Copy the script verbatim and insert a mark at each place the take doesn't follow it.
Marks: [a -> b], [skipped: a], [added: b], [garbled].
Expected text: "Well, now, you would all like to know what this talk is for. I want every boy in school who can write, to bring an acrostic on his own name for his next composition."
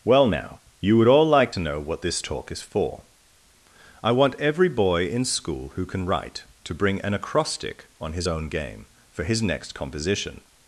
"Well, now, you would all like to know what this talk is for. I want every boy in school who can write, to bring an acrostic on his own [name -> game] for his next composition."